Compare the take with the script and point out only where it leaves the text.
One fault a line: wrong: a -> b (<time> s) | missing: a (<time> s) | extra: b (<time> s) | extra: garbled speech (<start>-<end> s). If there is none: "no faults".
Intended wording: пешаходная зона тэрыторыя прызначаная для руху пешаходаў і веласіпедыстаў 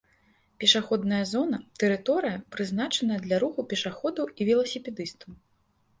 no faults